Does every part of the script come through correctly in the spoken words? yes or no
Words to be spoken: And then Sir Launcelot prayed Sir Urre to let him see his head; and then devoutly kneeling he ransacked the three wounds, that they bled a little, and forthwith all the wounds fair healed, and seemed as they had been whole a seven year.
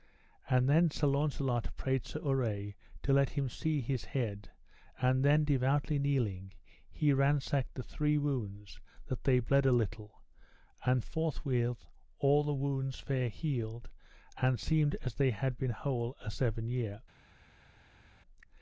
yes